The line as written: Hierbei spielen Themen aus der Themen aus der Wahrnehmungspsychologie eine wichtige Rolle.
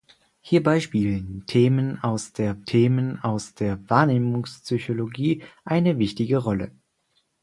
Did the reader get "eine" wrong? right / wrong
right